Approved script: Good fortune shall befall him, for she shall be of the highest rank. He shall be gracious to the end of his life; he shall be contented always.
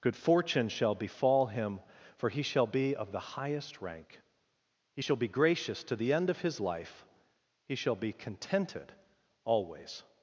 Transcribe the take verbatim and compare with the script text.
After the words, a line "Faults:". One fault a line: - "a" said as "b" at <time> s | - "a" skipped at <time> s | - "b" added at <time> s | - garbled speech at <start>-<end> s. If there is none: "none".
Good fortune shall befall him, for he shall be of the highest rank. He shall be gracious to the end of his life; he shall be contented always.
Faults:
- "she" said as "he" at 2.3 s